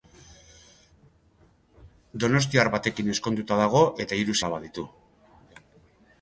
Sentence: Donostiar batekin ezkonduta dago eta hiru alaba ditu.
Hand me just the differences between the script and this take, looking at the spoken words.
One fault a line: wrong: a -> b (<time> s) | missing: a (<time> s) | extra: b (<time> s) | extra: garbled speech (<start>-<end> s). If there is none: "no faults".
no faults